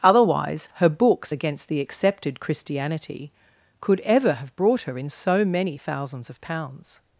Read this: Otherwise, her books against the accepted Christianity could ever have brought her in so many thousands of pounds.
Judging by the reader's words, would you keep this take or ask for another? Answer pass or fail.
pass